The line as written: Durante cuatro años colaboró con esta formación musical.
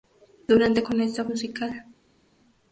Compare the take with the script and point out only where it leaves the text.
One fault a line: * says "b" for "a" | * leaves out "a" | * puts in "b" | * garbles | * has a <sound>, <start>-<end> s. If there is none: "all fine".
* leaves out "cuatro años colaboró"
* leaves out "formación"